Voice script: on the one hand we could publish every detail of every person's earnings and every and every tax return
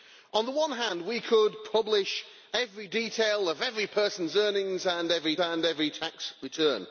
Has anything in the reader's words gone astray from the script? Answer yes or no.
no